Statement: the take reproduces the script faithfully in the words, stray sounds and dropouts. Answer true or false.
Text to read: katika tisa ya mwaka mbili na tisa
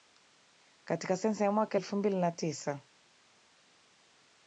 false